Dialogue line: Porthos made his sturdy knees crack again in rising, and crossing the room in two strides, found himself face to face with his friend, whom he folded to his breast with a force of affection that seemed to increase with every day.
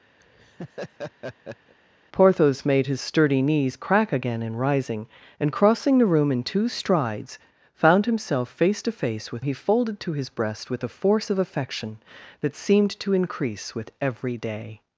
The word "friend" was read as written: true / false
false